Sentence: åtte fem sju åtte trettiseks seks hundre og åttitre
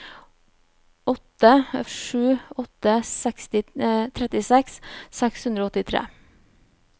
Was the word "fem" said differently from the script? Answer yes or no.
yes